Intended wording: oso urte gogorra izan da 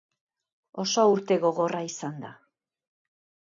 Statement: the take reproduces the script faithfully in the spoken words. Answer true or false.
true